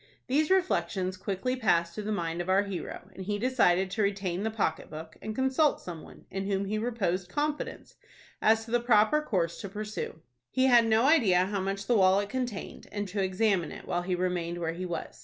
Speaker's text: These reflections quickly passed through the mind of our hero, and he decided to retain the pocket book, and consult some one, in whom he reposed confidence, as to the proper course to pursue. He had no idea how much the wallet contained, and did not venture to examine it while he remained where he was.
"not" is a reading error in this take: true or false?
true